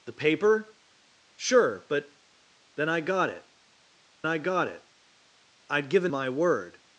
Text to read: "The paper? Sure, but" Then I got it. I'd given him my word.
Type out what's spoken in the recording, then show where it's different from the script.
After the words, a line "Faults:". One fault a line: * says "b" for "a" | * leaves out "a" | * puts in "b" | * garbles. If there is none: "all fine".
"The paper? Sure, but" Then I got it I got it. I'd given my word.
Faults:
* puts in "I got it"
* leaves out "him"